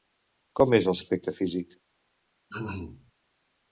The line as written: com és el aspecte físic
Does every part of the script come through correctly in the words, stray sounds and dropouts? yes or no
no